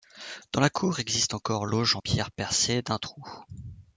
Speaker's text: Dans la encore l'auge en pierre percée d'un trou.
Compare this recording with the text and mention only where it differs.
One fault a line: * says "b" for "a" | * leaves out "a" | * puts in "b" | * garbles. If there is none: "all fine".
* puts in "cour existe"